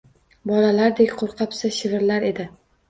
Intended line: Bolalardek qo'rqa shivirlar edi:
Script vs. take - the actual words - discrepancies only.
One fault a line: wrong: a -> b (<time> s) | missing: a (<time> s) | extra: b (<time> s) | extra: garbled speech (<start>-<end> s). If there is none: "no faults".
extra: pisa (1.6 s)